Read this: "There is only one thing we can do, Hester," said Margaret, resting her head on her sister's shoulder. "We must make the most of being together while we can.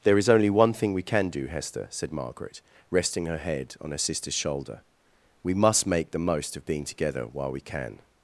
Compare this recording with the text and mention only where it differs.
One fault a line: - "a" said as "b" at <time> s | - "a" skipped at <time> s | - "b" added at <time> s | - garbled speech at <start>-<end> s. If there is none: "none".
none